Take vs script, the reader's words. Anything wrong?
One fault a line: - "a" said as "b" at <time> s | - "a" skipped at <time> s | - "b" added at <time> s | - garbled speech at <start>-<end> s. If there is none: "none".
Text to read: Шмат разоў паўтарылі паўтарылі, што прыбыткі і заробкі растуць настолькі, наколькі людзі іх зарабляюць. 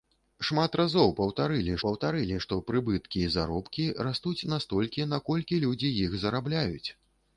none